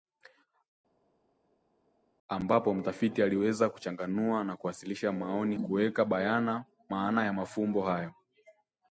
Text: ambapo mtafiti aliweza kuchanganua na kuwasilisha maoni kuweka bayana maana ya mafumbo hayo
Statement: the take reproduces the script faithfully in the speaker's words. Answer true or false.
true